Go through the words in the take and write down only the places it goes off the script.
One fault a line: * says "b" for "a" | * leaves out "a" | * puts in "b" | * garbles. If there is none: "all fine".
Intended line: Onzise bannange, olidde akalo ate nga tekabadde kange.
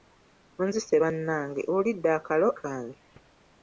* leaves out "ate nga tekabadde"